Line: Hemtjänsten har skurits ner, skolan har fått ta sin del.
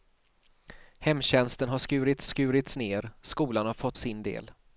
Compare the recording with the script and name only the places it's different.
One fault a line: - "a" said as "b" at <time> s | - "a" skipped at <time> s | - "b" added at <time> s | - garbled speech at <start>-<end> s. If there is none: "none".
- "skurits" added at 2.2 s
- "ta" skipped at 4.0 s